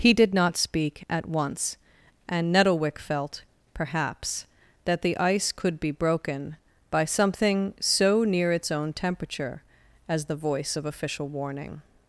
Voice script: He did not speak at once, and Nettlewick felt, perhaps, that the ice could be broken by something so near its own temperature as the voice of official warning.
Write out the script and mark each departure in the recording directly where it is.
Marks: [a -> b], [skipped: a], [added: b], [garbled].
He did not speak at once, and Nettlewick felt, perhaps, that the ice could be broken by something so near its own temperature as the voice of official warning.